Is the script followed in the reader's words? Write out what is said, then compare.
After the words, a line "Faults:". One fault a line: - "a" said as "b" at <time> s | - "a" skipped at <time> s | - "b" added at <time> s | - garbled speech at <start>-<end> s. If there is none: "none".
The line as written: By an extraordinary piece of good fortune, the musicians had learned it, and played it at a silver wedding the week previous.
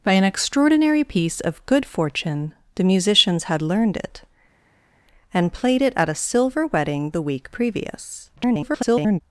By an extraordinary piece of good fortune, the musicians had learned it, and played it at a silver wedding the week previous. [garbled]
Faults:
- garbled speech at 8.4-9.2 s